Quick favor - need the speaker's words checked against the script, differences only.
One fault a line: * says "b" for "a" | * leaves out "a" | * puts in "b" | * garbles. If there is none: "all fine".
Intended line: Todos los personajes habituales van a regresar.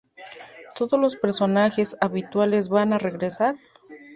all fine